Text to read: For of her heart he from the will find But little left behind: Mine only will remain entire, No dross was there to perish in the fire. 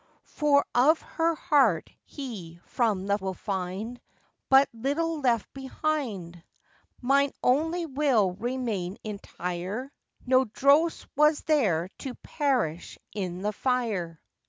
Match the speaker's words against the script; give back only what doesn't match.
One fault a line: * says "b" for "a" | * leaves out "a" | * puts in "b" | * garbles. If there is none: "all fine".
all fine